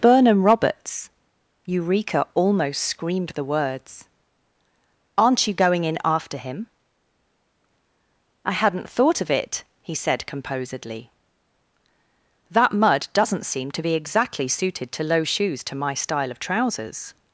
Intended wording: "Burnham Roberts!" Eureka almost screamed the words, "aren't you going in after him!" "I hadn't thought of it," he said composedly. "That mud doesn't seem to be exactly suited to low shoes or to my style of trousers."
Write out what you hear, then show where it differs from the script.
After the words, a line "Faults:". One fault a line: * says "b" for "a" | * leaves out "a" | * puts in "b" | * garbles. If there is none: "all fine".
"Burnham Roberts!" Eureka almost screamed the words, "aren't you going in after him!" "I hadn't thought of it," he said composedly. "That mud doesn't seem to be exactly suited to low shoes to my style of trousers."
Faults:
* leaves out "or"